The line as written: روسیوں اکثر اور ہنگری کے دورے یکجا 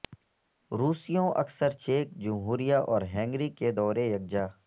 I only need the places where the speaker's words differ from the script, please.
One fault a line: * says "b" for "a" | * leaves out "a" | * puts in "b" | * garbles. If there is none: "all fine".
* puts in "چیک جمہوریہ"